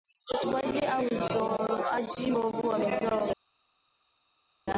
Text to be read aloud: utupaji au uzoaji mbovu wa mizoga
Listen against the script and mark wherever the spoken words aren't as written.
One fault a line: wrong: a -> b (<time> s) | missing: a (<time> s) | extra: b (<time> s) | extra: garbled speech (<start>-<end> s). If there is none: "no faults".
no faults